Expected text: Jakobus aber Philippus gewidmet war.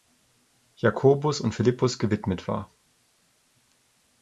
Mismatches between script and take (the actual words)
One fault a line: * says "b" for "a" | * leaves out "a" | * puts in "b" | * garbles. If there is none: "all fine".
* says "und" for "aber"